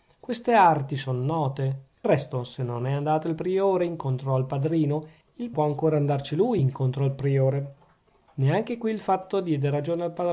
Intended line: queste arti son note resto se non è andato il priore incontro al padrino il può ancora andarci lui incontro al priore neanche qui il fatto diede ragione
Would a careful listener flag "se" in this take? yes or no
no